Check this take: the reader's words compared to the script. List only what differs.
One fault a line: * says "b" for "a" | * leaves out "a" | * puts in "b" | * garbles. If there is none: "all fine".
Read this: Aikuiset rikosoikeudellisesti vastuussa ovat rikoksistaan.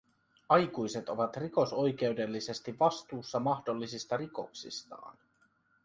* puts in "ovat"
* says "mahdollisista" for "ovat"